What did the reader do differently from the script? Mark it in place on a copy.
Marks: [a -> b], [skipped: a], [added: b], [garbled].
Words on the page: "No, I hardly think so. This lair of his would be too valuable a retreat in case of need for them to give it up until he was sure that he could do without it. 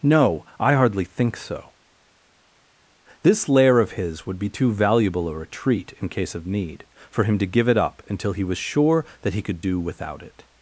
"No, I hardly think so. This lair of his would be too valuable a retreat in case of need for [them -> him] to give it up until he was sure that he could do without it.